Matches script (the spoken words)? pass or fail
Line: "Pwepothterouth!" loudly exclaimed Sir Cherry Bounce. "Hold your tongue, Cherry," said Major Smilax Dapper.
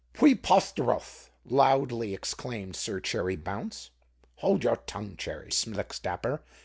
fail